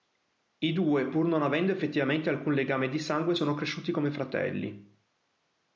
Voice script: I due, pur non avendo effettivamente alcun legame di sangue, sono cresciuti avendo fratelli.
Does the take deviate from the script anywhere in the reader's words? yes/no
yes